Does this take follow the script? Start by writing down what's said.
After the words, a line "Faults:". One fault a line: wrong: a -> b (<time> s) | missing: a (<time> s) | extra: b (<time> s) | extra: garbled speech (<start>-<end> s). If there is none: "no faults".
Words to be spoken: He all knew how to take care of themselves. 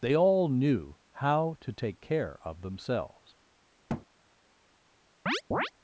They all knew how to take care of themselves.
Faults:
wrong: He -> They (0.0 s)